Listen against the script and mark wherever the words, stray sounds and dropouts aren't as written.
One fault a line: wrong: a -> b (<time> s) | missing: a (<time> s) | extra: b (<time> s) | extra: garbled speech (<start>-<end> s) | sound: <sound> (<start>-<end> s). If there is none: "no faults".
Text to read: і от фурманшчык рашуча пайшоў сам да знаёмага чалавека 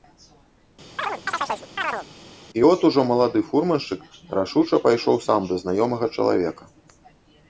sound: chirp (1.0-2.1 s)
extra: ужо малады (2.9 s)